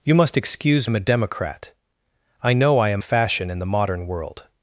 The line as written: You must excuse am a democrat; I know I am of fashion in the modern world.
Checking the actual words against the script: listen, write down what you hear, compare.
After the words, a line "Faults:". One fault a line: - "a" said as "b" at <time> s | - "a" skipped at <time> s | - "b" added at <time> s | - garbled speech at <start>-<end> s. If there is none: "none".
You must excuse am a democrat; I know I am of fashion in the modern world.
Faults:
none